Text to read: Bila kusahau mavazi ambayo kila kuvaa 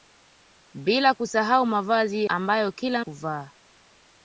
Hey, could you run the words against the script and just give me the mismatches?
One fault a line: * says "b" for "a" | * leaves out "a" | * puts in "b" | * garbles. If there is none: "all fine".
all fine